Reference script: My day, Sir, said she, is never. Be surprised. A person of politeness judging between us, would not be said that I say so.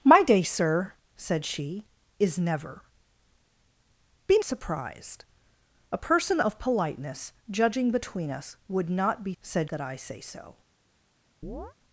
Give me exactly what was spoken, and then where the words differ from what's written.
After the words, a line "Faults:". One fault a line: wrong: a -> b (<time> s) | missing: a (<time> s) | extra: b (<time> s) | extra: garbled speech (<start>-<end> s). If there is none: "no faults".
My day, Sir, said she, is never. Be surprised. A person of politeness judging between us, would not be said that I say so.
Faults:
no faults